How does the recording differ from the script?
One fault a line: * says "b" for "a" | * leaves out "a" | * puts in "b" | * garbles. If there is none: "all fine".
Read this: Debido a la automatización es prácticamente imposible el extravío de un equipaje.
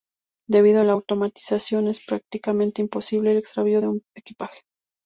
all fine